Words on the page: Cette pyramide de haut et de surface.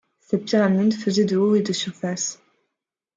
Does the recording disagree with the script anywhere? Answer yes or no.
yes